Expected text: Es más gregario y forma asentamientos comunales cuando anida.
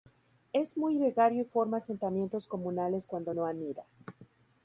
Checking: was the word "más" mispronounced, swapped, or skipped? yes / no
yes